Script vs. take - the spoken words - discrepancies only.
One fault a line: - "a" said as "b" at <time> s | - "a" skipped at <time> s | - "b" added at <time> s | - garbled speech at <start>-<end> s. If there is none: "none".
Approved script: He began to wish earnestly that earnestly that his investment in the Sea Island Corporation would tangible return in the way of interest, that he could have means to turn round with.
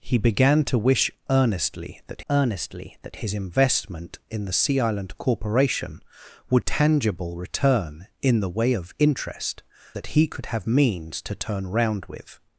none